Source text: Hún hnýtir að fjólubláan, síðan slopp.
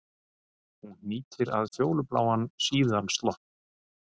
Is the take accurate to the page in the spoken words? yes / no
yes